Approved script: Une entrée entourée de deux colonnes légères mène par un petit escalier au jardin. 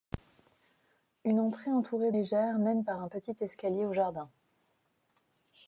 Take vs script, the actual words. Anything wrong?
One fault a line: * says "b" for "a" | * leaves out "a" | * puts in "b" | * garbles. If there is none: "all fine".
* leaves out "de deux colonnes"